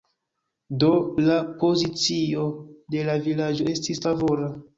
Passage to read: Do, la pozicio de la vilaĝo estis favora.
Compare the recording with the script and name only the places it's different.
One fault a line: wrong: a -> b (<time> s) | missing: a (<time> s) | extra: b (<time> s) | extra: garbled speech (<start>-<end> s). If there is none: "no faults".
no faults